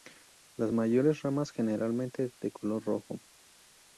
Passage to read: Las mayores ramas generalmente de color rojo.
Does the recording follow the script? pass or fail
pass